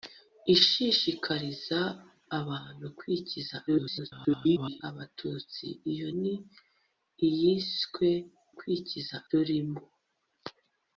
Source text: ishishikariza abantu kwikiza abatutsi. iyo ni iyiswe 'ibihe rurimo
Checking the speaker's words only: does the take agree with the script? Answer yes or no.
no